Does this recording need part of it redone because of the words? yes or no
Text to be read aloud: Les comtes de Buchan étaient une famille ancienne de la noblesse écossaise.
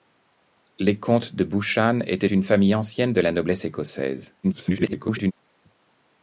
yes